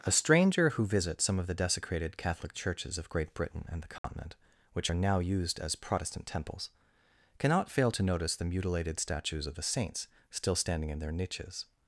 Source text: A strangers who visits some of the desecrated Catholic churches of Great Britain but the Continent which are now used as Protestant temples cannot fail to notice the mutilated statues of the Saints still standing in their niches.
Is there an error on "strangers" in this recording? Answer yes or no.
yes